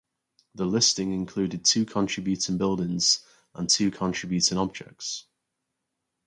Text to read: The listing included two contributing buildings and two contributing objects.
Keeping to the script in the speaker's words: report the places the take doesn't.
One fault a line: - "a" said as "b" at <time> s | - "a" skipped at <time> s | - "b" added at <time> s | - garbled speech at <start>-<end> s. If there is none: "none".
none